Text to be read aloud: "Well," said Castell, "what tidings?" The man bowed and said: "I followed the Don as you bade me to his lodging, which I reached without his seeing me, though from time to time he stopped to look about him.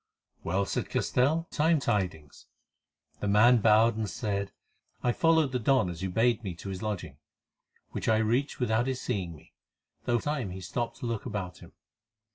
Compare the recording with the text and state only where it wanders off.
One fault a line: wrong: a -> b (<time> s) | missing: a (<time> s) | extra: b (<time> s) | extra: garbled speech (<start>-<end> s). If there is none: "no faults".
wrong: what -> time (1.5 s)
missing: from time to (10.2 s)